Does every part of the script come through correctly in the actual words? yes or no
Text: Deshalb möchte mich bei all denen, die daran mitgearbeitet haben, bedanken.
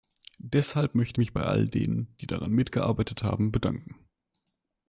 yes